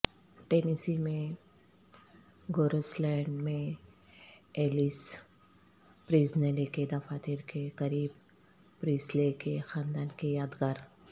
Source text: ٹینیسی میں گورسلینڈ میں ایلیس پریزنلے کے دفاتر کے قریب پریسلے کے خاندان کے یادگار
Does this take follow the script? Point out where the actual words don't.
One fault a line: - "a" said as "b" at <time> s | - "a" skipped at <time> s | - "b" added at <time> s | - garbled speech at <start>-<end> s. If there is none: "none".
none